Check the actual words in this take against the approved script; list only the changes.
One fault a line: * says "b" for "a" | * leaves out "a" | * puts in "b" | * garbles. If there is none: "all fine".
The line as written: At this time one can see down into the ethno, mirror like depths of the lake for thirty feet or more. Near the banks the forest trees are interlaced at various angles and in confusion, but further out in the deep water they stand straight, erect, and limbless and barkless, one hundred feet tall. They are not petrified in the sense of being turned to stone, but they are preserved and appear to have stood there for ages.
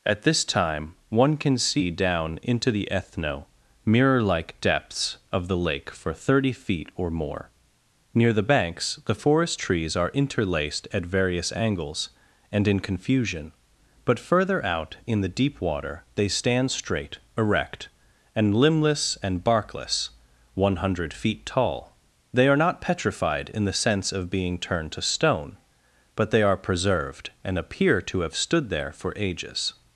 all fine